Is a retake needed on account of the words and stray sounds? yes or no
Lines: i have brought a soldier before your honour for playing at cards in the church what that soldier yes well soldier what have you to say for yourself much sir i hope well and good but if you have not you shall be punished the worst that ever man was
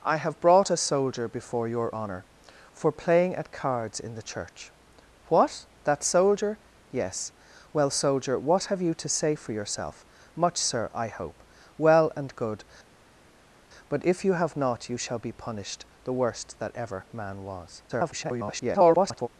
yes